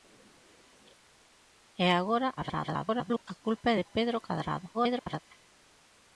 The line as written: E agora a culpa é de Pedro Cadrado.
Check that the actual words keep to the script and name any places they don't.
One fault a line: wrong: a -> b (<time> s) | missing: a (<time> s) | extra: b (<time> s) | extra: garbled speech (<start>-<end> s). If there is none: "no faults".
extra: garbled speech (2.4-3.2 s)
extra: garbled speech (4.7-5.2 s)